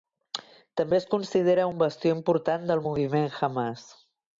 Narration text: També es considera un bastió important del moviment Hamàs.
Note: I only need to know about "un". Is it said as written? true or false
true